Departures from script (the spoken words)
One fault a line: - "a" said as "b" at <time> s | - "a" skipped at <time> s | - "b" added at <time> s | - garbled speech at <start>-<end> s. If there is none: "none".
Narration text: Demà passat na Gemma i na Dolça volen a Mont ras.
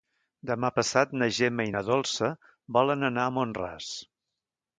- "anar" added at 3.1 s